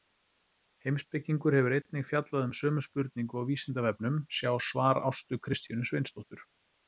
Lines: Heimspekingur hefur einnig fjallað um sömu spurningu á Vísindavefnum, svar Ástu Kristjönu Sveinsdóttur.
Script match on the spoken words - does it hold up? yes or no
no